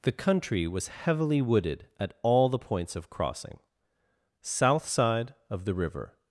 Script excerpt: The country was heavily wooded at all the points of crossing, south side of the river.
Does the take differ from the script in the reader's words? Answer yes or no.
no